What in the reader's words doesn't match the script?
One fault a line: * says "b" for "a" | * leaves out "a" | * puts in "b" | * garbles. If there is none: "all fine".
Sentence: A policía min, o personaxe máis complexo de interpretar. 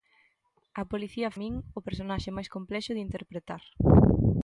all fine